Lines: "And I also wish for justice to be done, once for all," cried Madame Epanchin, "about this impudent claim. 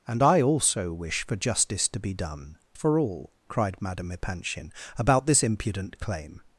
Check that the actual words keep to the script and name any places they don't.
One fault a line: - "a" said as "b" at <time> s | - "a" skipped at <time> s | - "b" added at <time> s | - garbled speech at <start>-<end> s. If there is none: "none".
- "once" skipped at 2.6 s